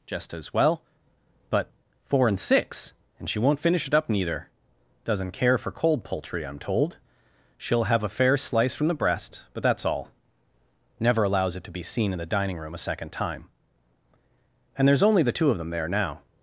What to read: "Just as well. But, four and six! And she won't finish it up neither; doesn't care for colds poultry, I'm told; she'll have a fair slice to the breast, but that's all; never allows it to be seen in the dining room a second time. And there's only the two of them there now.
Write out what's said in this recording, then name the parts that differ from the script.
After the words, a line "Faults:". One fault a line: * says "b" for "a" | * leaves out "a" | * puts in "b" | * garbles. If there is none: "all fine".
"Just as well. But, four and six! And she won't finish it up neither; doesn't care for cold poultry, I'm told; she'll have a fair slice from the breast, but that's all; never allows it to be seen in the dining room a second time. And there's only the two of them there now.
Faults:
* says "cold" for "colds"
* says "from" for "to"